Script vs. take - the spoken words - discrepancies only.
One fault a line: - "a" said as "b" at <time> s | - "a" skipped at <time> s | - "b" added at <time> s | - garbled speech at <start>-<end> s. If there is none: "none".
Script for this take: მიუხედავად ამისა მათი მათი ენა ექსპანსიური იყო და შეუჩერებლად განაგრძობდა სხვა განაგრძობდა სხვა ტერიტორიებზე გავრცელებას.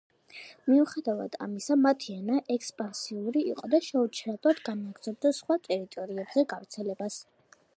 - "მათი" skipped at 2.1 s
- "განაგრძობდა სხვა" skipped at 5.6 s